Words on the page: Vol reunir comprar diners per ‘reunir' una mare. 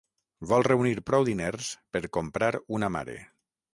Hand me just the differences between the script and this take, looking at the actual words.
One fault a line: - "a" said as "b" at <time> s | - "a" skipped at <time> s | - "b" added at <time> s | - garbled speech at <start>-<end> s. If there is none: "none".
- "comprar" said as "prou" at 1.1 s
- "reunir" said as "comprar" at 2.2 s